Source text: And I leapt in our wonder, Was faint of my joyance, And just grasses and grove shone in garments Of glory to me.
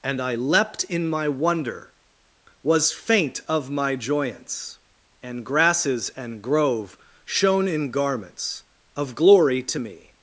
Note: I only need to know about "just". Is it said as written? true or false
false